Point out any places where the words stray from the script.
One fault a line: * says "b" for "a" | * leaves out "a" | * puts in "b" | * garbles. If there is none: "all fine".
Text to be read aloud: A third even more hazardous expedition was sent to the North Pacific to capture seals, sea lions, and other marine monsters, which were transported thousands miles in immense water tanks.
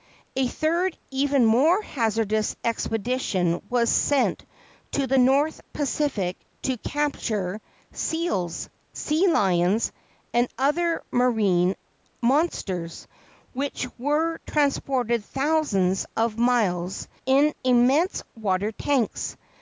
* puts in "of"